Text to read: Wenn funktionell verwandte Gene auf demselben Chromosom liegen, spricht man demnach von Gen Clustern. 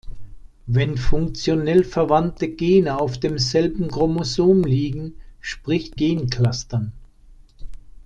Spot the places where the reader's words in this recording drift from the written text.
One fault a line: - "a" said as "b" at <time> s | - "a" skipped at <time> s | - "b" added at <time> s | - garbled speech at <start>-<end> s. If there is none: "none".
- "man demnach von" skipped at 6.0 s